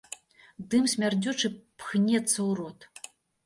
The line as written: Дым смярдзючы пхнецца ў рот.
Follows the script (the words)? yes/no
yes